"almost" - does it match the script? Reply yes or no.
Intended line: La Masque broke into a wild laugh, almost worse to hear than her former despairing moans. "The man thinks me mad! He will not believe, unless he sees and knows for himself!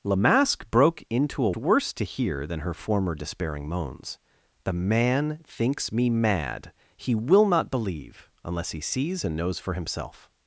no